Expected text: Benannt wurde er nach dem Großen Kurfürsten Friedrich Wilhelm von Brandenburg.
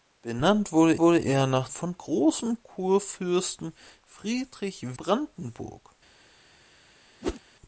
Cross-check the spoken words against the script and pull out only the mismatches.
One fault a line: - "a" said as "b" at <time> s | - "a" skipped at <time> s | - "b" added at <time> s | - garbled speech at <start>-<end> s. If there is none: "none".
- "wurde" added at 1.0 s
- "dem" said as "von" at 1.7 s
- "Wilhelm von" skipped at 5.0 s